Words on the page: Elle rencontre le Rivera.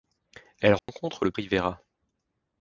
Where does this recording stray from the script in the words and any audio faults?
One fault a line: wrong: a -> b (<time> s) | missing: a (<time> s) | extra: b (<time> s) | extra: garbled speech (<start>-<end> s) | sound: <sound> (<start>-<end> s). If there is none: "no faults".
sound: dropout (0.8-0.9 s)